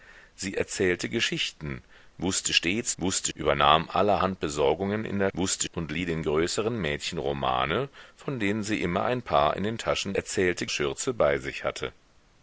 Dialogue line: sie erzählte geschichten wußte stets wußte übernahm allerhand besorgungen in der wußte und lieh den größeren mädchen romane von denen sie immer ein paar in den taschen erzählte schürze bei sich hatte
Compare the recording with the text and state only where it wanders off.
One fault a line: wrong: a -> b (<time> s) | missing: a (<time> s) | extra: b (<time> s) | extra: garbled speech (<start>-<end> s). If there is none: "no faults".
no faults